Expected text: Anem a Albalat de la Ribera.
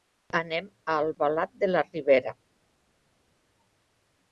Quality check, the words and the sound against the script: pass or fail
pass